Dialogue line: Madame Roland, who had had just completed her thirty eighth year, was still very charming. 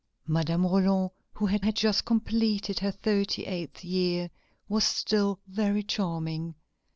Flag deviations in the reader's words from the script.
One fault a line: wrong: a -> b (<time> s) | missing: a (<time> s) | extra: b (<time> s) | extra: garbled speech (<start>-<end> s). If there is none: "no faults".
no faults